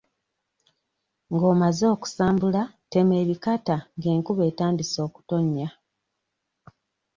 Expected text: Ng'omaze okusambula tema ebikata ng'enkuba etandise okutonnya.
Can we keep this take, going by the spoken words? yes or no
yes